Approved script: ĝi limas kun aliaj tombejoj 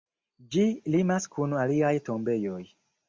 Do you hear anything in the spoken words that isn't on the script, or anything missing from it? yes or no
no